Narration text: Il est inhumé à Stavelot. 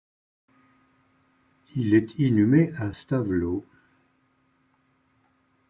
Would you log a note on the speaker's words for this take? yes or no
no